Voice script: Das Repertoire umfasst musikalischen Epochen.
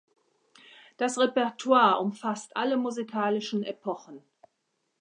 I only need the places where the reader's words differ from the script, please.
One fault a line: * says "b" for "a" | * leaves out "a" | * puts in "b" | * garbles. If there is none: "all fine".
* puts in "alle"